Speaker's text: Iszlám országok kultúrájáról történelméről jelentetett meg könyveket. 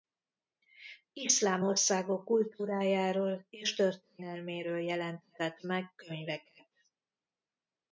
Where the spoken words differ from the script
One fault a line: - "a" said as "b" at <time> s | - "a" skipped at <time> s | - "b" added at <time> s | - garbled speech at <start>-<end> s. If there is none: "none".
- "és" added at 3.5 s